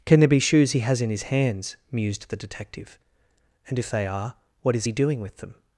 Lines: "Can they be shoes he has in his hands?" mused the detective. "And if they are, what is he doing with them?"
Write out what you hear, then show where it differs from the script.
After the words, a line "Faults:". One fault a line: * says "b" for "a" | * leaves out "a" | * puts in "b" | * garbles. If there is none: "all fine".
"Can there be shoes he has in his hands?" mused the detective. "And if they are, what is he doing with them?"
Faults:
* says "there" for "they"